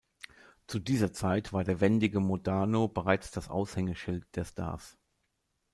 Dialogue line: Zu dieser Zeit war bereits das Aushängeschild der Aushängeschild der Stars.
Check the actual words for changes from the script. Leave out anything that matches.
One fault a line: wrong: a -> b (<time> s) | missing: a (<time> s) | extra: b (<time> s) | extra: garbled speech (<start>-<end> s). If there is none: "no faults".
extra: der wendige Modano (1.6 s)
missing: Aushängeschild der (4.5 s)